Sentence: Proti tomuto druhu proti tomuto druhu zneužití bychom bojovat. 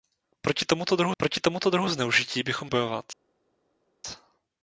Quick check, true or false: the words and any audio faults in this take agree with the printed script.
true